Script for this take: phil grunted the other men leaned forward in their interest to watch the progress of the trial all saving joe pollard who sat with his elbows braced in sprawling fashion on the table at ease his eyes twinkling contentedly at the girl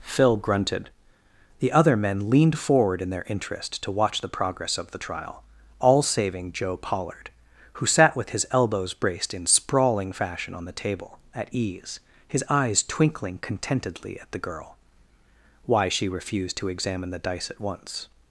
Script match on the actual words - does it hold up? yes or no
no